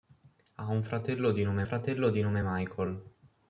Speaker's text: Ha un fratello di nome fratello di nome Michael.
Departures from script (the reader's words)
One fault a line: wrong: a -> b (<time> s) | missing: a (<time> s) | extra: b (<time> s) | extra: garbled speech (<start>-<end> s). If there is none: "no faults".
no faults